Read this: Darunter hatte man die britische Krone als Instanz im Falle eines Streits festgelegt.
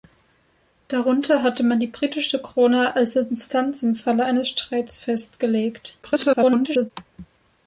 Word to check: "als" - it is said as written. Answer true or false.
true